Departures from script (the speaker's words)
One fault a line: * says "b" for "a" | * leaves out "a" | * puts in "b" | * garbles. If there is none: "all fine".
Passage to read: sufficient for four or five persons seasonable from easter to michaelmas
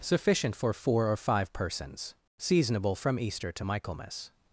all fine